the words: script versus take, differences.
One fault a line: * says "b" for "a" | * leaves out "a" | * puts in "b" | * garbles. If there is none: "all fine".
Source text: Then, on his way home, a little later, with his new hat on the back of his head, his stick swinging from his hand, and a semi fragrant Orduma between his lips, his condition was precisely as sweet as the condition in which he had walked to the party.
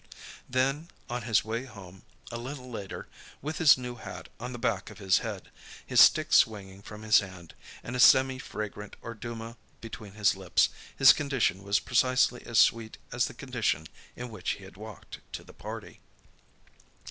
all fine